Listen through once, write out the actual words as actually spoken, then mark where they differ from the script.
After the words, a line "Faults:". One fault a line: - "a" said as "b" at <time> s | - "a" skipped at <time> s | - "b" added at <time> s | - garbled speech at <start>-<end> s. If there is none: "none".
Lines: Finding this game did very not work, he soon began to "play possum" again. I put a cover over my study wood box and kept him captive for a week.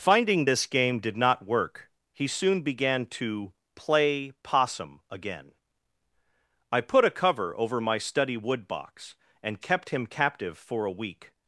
Finding this game did not work, he soon began to "play possum" again. I put a cover over my study wood box and kept him captive for a week.
Faults:
- "very" skipped at 1.2 s